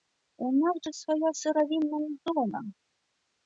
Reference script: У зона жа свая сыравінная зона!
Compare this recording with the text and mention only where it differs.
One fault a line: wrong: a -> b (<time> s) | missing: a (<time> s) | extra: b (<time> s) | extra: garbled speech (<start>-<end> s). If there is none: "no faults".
wrong: зона -> нас (0.6 s)